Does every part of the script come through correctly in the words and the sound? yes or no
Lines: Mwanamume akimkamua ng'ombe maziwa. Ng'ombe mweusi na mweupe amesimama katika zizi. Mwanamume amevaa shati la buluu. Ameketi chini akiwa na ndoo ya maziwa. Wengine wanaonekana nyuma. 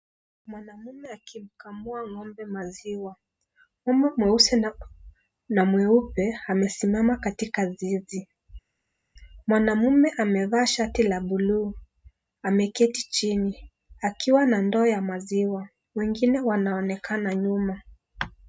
yes